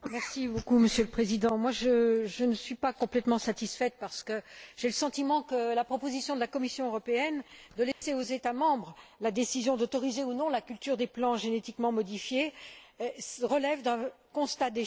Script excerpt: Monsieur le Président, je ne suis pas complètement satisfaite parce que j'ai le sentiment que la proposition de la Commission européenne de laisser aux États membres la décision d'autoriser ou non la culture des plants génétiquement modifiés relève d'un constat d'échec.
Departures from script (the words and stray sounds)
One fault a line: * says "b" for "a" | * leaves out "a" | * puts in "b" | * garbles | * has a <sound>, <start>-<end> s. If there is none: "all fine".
* has a dropout, 7.9-8.0 s